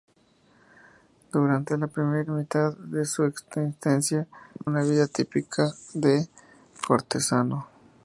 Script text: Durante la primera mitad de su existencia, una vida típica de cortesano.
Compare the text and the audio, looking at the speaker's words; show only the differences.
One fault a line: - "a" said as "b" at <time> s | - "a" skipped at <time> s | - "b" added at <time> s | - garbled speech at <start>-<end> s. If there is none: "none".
none